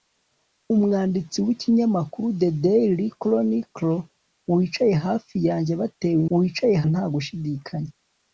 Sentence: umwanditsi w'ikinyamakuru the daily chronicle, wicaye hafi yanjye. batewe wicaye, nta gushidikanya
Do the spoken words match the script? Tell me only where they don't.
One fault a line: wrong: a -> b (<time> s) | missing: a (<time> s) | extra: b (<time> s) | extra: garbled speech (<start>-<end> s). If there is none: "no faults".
no faults